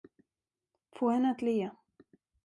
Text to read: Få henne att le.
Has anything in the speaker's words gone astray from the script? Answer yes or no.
no